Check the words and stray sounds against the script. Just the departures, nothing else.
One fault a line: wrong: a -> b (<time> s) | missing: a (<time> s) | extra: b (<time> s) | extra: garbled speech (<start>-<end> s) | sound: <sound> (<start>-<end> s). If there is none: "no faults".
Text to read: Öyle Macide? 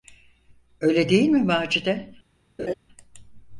extra: değil mi (1.1 s)
sound: laugh (2.6-2.7 s)